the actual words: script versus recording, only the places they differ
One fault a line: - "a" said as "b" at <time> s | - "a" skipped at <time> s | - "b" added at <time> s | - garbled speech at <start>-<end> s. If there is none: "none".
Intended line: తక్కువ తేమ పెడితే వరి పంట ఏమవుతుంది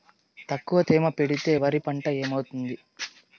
none